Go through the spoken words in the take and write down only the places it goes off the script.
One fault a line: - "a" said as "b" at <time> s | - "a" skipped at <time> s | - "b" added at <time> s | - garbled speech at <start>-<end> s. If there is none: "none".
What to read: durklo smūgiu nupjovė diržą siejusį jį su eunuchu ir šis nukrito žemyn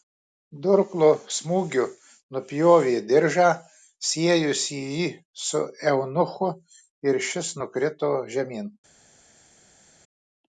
none